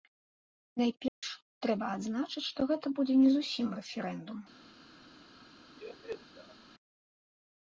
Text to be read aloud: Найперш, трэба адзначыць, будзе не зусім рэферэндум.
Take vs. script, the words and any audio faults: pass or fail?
fail